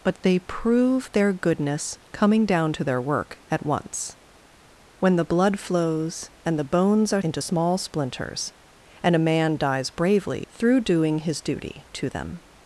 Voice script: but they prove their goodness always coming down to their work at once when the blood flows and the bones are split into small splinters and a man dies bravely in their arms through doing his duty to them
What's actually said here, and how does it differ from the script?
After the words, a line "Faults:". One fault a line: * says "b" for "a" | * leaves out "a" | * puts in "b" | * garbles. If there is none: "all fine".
but they prove their goodness coming down to their work at once when the blood flows and the bones are into small splinters and a man dies bravely through doing his duty to them
Faults:
* leaves out "always"
* leaves out "split"
* leaves out "in their arms"